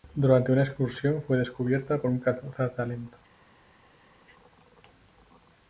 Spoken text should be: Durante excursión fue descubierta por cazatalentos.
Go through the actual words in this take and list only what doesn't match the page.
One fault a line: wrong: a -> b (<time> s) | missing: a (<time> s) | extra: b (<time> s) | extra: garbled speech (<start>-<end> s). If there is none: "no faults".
extra: una (0.5 s)
extra: un (2.1 s)